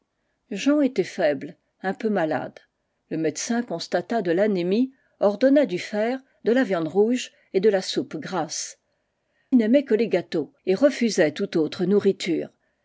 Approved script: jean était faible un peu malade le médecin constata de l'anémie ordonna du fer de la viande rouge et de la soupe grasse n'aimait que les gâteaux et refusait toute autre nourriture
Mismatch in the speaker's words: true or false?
false